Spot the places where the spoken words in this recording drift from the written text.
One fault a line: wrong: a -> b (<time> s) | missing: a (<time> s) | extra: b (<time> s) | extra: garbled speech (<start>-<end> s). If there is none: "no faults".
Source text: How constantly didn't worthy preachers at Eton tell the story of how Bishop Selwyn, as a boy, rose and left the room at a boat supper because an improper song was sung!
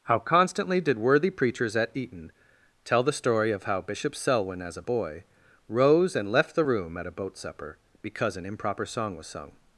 wrong: didn't -> did (0.8 s)